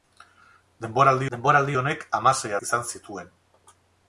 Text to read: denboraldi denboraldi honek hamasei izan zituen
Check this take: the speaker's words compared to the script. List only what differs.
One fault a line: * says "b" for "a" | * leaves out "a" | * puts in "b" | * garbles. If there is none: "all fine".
all fine